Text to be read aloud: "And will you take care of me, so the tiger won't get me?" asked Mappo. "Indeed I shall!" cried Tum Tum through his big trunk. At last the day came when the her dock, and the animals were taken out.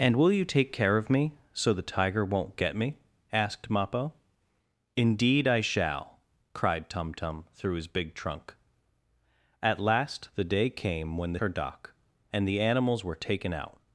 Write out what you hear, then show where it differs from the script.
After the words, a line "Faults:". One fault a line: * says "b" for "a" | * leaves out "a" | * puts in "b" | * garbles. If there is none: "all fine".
"And will you take care of me, so the tiger won't get me?" asked Mappo. "Indeed I shall!" cried Tum Tum through his big trunk. At last the day came when the her dock, and the animals were taken out.
Faults:
all fine